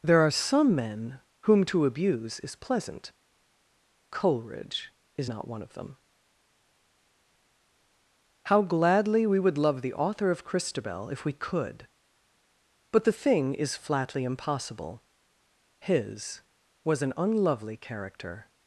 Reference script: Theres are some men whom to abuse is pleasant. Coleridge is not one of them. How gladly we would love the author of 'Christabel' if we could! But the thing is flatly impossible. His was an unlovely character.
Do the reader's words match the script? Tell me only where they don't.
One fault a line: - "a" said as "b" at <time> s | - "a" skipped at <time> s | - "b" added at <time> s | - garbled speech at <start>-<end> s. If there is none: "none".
- "Theres" said as "There" at 0.0 s